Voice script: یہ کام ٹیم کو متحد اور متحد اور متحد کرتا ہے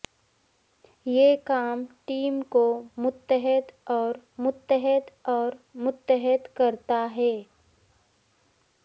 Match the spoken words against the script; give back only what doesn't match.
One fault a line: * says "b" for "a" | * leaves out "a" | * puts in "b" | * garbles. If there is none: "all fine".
all fine